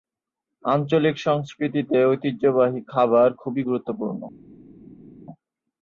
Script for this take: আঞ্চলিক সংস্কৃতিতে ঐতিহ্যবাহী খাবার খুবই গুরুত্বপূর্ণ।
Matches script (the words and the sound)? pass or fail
pass